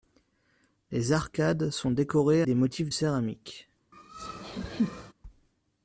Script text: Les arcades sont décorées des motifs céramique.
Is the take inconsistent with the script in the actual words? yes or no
no